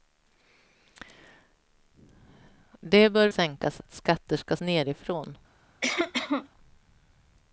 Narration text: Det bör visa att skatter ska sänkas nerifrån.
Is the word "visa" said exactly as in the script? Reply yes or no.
no